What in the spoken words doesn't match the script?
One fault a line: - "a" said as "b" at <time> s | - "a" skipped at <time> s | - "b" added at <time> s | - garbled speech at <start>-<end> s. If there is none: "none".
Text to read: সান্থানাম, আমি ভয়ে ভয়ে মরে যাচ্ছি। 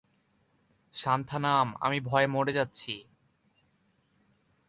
- "ভয়ে" skipped at 2.3 s